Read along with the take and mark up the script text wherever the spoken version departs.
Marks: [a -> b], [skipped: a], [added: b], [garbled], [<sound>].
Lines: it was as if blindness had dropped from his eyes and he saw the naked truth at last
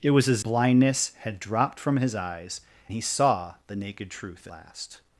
it was as [skipped: if] blindness had dropped from his eyes [skipped: and] he saw the naked truth [skipped: at] last